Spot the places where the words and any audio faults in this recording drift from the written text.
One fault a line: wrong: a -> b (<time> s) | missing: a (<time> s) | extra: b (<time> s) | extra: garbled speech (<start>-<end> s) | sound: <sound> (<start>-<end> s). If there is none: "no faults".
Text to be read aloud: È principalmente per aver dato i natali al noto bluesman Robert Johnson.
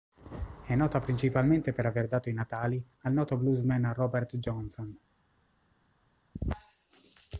extra: nota (0.7 s)